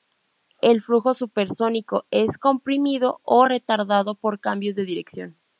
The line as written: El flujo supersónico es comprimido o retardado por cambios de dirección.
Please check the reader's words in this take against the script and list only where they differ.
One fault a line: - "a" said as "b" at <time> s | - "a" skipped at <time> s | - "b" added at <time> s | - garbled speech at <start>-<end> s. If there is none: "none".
none